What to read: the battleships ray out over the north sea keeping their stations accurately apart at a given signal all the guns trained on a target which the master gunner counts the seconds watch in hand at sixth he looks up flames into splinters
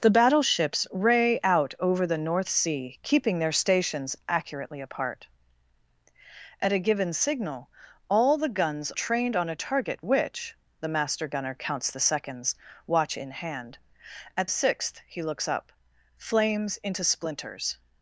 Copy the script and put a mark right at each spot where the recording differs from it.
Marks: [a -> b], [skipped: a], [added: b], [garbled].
the battleships ray out over the north sea keeping their stations accurately apart at a given signal all the guns trained on a target which the master gunner counts the seconds watch in hand at sixth he looks up flames into splinters